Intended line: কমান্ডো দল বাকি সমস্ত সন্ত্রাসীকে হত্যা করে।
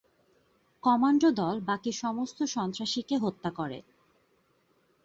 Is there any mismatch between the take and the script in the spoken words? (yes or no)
no